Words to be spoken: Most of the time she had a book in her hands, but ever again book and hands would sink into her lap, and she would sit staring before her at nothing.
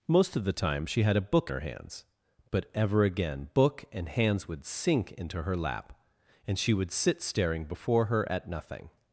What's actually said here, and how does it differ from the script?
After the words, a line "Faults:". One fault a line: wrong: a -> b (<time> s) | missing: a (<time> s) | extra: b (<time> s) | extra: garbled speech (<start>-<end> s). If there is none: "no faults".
Most of the time she had a book her hands, but ever again book and hands would sink into her lap, and she would sit staring before her at nothing.
Faults:
missing: in (1.5 s)